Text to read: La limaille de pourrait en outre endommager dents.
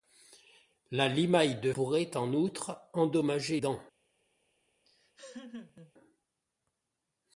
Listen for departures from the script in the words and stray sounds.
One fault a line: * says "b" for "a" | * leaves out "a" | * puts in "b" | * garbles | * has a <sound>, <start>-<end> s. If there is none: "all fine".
* has a laugh, 4.8-5.9 s